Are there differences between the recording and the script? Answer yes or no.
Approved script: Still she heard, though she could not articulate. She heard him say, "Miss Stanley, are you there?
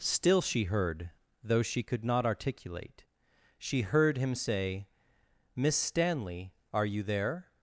no